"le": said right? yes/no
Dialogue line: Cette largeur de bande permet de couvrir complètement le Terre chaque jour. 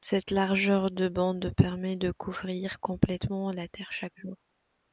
no